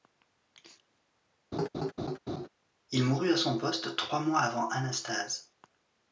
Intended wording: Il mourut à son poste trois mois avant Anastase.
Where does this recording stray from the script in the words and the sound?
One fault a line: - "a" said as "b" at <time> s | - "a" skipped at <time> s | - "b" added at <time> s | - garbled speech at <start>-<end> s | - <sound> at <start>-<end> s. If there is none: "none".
- laugh at 1.5-2.5 s